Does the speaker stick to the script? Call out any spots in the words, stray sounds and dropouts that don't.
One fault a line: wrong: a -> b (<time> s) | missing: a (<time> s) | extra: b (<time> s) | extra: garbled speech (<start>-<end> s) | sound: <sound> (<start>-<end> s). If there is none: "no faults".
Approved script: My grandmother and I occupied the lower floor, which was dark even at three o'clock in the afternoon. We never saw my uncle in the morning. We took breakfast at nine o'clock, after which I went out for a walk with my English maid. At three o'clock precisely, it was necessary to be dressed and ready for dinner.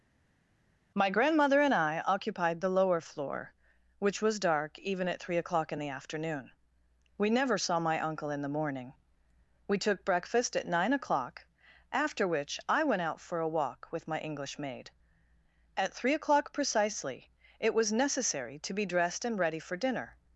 no faults